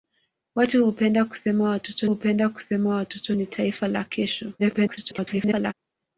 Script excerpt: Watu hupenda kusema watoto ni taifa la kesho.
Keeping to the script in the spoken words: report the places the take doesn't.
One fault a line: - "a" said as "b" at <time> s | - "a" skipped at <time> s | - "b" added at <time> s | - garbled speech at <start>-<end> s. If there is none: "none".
- "hupenda kusema watoto" added at 2.1 s
- garbled speech at 4.6-5.7 s